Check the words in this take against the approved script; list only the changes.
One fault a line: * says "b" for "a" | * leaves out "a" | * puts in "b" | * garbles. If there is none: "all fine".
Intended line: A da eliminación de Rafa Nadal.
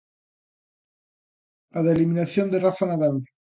all fine